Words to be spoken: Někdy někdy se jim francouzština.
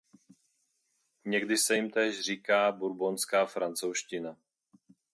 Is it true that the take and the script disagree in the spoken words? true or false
true